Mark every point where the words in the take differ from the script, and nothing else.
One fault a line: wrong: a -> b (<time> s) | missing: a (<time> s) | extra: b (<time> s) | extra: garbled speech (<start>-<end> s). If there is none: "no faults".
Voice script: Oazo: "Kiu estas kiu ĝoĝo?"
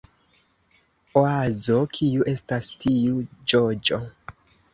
wrong: kiu -> tiu (2.9 s)